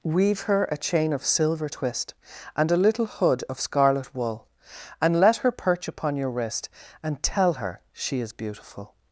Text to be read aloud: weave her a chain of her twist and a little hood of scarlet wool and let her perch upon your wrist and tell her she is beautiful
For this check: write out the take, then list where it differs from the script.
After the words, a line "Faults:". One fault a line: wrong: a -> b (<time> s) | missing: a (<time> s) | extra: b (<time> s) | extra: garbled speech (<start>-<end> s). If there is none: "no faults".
weave her a chain of silver twist and a little hood of scarlet wool and let her perch upon your wrist and tell her she is beautiful
Faults:
wrong: her -> silver (1.2 s)